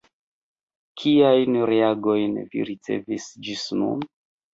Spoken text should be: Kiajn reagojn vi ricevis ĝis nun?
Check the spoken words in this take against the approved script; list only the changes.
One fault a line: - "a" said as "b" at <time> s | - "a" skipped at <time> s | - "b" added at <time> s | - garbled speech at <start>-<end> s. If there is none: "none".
none